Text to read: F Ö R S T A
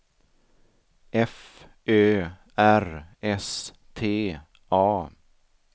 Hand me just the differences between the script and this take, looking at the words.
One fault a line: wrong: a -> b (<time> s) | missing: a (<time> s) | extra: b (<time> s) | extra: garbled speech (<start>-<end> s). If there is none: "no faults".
no faults